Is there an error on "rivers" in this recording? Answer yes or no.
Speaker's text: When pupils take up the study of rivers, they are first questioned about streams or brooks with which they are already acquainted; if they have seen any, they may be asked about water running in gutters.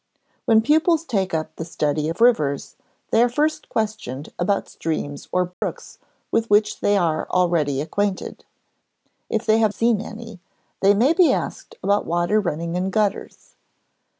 no